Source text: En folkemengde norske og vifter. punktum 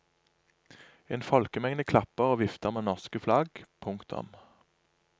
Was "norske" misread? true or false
true